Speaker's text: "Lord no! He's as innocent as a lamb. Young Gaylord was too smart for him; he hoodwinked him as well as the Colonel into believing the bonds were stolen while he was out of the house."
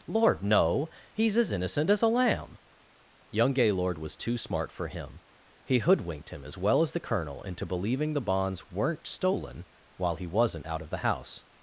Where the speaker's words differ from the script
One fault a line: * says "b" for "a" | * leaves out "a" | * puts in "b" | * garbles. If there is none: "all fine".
* says "weren't" for "were"
* says "wasn't" for "was"